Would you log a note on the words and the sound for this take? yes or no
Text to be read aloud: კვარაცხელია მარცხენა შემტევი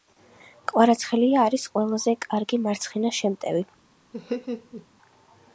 yes